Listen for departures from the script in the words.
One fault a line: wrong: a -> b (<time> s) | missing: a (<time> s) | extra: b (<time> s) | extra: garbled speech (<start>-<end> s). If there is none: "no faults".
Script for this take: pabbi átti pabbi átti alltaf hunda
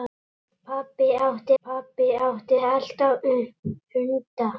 no faults